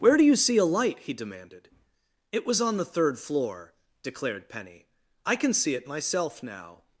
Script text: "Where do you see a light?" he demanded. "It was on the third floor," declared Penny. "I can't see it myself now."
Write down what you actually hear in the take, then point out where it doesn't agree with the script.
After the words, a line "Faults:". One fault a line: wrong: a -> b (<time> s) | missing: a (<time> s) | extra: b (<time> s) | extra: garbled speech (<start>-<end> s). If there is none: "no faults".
"Where do you see a light?" he demanded. "It was on the third floor," declared Penny. "I can see it myself now."
Faults:
wrong: can't -> can (5.3 s)